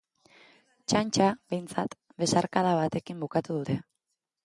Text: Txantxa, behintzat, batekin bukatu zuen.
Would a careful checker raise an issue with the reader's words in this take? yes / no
yes